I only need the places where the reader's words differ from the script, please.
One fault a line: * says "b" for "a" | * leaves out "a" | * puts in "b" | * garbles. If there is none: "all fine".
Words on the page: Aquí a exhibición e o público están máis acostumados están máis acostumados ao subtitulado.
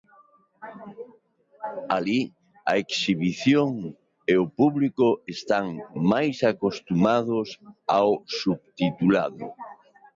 * says "Alí" for "Aquí"
* leaves out "están máis acostumados"